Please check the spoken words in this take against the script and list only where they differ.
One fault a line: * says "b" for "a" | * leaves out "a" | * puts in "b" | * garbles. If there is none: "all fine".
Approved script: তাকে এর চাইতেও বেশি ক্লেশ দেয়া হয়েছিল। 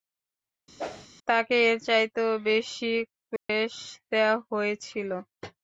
all fine